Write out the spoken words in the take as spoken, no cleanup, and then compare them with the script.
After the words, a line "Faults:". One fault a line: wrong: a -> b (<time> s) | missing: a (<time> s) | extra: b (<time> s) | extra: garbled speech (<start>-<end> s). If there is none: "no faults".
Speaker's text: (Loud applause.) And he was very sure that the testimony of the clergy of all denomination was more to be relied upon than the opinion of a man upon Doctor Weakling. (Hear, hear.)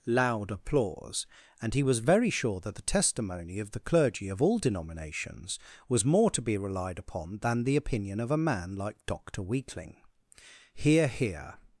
(Loud applause.) And he was very sure that the testimony of the clergy of all denominations was more to be relied upon than the opinion of a man like Doctor Weakling. (Hear, hear.)
Faults:
wrong: denomination -> denominations (4.6 s)
wrong: upon -> like (8.8 s)